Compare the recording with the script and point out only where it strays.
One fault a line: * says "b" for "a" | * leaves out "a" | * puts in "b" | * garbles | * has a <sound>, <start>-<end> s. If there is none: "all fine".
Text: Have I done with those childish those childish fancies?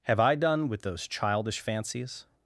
* leaves out "those childish"